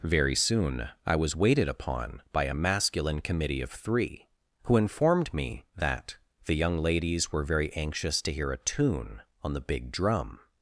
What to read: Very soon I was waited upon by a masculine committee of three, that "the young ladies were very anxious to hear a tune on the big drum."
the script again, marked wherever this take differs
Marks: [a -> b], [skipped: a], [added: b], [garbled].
Very soon I was waited upon by a masculine committee of three, [added: who informed me] that "the young ladies were very anxious to hear a tune on the big drum."